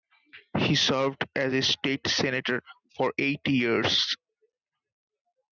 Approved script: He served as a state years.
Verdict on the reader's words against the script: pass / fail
fail